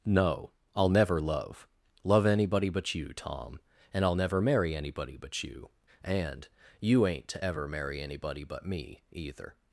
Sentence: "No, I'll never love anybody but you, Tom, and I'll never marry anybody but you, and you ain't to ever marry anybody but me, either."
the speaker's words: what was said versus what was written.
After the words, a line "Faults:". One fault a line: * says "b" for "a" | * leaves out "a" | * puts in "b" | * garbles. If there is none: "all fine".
"No, I'll never love love anybody but you, Tom, and I'll never marry anybody but you, and you ain't to ever marry anybody but me, either."
Faults:
* puts in "love"